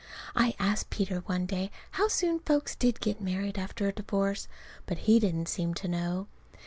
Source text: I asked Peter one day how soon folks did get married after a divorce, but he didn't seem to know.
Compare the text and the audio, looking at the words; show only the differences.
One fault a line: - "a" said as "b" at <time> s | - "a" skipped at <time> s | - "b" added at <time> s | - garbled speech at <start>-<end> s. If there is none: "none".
none